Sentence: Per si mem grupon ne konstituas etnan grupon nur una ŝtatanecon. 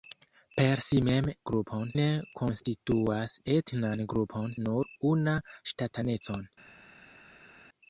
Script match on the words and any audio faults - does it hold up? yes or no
yes